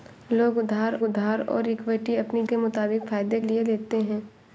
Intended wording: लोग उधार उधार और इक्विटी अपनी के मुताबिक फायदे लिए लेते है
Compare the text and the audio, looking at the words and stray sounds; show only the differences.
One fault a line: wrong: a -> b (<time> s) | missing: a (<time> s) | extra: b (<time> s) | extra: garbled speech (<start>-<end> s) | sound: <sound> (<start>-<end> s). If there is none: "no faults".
no faults